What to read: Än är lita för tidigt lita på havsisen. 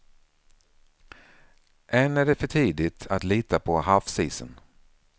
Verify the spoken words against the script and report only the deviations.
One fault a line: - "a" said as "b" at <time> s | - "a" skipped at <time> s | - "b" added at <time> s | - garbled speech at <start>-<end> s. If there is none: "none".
- "lita" said as "det" at 2.2 s
- "att" added at 3.1 s